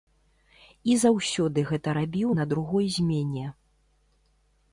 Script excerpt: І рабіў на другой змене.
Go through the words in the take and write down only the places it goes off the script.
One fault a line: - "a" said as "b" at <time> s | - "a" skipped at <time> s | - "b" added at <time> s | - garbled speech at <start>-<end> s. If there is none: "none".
- "заўсёды гэта" added at 1.0 s